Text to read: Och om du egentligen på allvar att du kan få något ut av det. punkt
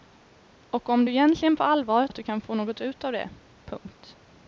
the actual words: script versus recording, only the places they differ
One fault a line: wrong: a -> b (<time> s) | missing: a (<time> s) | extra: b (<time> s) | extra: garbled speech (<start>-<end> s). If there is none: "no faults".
no faults